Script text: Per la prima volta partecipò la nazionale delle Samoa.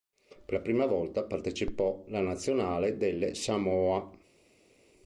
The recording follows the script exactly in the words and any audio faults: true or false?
true